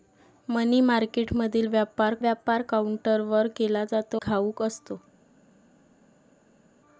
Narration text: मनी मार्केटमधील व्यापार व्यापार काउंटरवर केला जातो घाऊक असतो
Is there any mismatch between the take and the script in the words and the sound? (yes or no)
no